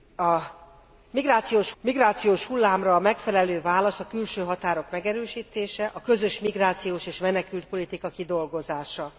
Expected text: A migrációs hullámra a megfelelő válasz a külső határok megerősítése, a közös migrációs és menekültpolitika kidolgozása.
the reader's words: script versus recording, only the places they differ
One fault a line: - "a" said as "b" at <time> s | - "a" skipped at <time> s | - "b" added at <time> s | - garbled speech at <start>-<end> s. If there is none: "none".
- "migrációs" added at 1.8 s